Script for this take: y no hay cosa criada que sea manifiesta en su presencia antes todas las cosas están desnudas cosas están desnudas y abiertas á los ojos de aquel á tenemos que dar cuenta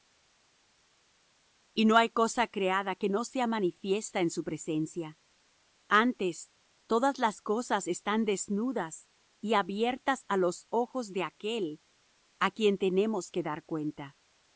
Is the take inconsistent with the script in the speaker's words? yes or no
yes